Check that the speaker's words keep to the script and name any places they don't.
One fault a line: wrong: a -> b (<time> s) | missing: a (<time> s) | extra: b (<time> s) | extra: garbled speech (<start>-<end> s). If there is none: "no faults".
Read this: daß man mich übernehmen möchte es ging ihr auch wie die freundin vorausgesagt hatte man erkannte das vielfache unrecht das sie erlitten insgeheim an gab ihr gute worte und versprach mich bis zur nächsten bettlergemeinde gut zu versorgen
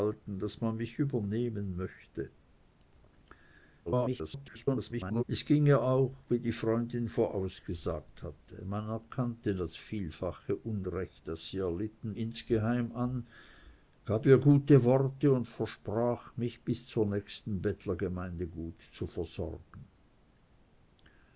extra: garbled speech (3.9-5.2 s)